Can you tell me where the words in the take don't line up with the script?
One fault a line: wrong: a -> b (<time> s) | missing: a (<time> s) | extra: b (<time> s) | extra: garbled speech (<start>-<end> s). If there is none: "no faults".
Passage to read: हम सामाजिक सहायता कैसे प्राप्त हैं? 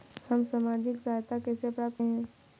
no faults